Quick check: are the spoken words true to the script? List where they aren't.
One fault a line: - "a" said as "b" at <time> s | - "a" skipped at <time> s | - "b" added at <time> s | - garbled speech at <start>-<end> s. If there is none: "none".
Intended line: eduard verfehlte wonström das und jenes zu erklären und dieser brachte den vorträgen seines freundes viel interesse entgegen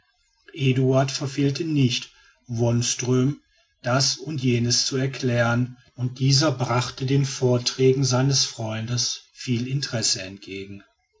- "nicht" added at 1.6 s